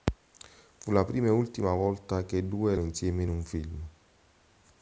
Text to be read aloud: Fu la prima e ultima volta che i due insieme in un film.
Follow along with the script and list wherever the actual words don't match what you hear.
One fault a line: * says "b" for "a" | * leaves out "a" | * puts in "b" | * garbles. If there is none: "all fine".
all fine